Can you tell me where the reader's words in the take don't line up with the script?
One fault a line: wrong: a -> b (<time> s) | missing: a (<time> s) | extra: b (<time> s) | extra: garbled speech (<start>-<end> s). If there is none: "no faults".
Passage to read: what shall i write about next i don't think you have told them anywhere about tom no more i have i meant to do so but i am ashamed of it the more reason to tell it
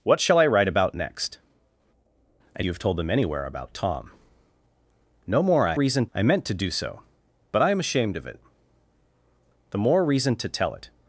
missing: don't think (2.6 s)
wrong: have -> reason (5.7 s)